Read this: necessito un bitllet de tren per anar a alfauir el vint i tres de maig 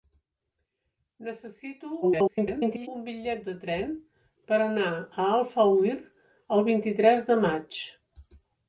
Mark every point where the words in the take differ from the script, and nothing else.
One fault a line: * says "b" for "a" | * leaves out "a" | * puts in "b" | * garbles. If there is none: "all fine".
* garbles